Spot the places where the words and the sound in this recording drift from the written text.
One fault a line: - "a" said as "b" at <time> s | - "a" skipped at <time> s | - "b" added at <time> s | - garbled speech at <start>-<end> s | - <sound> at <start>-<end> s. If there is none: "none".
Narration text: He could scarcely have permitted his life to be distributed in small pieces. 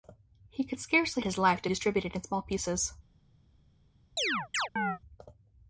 - "have permitted" skipped at 1.2 s
- "be" skipped at 1.7 s
- chirp at 4.2-5.0 s